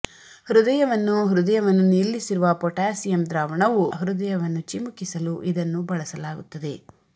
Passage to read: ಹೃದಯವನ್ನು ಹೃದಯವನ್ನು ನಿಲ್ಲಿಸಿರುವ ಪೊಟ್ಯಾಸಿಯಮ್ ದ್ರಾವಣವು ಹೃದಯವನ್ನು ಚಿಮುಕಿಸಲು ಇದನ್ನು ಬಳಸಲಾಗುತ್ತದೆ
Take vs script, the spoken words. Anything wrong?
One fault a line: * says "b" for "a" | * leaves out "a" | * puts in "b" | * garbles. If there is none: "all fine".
all fine